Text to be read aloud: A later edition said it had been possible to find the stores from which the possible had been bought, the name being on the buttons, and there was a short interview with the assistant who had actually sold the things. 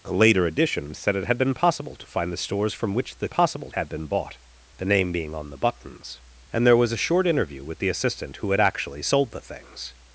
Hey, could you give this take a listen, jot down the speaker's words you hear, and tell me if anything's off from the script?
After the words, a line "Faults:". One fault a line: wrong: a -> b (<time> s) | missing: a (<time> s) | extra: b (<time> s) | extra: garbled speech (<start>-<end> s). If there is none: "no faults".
A later edition said it had been possible to find the stores from which the possible had been bought, the name being on the buttons, and there was a short interview with the assistant who had actually sold the things.
Faults:
no faults